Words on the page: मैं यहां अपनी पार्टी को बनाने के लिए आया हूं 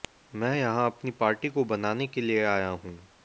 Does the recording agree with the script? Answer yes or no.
yes